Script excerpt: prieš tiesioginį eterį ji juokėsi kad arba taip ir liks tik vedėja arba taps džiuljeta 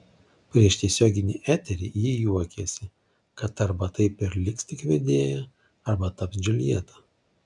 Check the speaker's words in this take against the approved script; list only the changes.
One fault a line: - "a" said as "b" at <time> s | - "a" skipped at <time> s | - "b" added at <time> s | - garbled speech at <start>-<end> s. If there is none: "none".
none